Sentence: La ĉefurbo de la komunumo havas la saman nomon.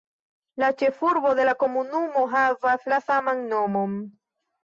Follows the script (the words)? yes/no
yes